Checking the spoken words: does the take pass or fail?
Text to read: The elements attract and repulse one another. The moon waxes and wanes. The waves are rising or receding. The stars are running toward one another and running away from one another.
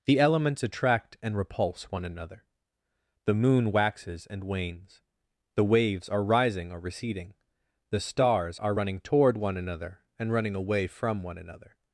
pass